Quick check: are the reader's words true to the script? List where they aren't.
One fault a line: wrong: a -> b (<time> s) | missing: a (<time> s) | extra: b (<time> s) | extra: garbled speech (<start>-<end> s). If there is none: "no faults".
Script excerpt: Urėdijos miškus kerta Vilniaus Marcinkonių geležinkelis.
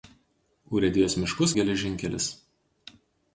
missing: kerta Vilniaus Marcinkonių (1.5 s)